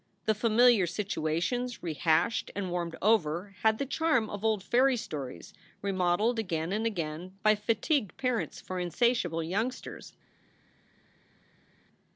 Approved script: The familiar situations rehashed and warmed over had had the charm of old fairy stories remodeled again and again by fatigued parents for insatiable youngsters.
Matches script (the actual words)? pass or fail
fail